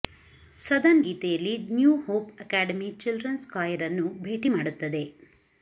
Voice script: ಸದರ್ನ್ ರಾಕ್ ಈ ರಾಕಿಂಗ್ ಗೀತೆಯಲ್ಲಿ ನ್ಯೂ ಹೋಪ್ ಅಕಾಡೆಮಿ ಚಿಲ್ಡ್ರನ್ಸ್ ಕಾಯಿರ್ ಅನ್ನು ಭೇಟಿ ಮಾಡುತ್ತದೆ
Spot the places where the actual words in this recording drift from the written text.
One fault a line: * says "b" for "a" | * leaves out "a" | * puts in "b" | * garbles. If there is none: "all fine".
* leaves out "ರಾಕ್ ಈ ರಾಕಿಂಗ್"